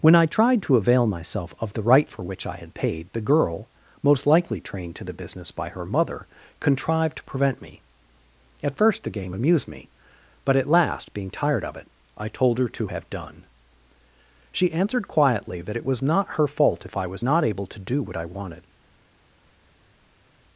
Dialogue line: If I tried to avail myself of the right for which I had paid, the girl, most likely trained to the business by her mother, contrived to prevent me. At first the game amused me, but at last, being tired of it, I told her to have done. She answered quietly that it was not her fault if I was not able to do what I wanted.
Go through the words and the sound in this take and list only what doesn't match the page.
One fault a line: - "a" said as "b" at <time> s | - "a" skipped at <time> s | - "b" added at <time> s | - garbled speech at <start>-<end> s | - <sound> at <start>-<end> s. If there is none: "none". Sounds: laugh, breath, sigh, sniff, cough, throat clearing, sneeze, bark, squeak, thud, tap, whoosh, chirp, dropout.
- "If" said as "When" at 0.0 s